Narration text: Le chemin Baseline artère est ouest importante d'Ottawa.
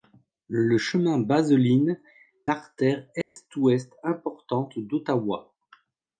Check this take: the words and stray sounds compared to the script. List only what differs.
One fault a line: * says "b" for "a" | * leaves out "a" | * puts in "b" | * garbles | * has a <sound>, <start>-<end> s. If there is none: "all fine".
* has a dropout, 3.2-3.4 s